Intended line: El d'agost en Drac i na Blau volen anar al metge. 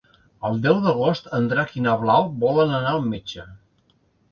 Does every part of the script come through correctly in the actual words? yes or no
no